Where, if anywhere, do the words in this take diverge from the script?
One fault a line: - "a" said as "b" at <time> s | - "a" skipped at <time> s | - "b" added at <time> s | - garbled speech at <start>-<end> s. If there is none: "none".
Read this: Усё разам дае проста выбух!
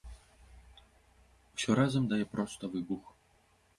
none